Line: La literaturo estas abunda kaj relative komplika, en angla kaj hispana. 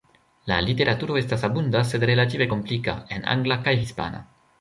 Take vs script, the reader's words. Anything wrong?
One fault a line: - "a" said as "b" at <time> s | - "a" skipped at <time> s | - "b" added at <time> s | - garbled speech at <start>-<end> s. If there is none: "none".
- "kaj" said as "sed" at 1.9 s